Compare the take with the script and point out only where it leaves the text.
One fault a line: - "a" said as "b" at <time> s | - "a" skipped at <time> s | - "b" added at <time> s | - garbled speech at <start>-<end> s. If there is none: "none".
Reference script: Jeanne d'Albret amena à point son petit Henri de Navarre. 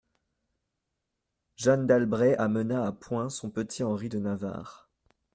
none